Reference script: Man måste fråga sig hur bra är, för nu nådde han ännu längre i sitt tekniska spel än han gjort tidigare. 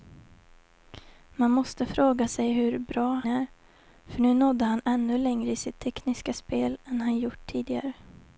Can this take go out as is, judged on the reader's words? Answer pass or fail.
pass